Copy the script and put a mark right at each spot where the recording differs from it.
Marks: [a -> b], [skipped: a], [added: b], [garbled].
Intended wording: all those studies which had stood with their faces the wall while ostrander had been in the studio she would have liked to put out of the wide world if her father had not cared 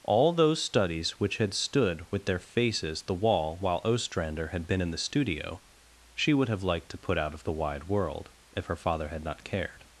all those studies which had stood with their faces the wall while ostrander had been in the studio she would have liked to put out of the wide world if her father had not cared